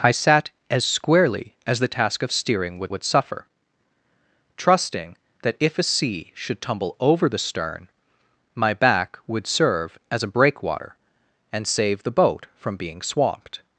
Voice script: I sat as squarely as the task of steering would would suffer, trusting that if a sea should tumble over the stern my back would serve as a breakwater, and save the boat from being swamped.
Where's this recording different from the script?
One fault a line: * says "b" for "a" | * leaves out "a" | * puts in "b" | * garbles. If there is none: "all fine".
all fine